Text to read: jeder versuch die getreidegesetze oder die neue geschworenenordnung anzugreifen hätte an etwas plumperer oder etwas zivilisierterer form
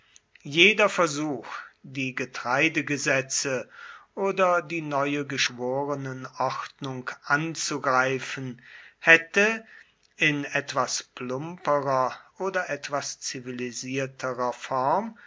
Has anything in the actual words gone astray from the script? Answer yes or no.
yes